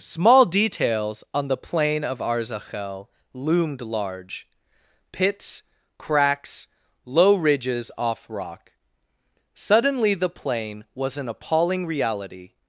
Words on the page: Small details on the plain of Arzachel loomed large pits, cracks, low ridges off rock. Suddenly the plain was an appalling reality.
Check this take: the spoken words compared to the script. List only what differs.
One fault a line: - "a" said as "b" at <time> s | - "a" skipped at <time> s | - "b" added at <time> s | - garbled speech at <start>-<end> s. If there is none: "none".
none